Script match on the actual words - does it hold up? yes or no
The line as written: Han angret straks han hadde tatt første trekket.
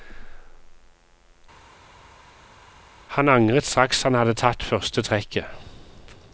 yes